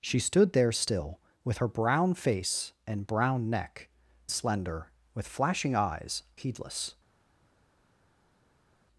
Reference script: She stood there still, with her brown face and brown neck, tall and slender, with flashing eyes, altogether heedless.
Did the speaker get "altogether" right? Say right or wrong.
wrong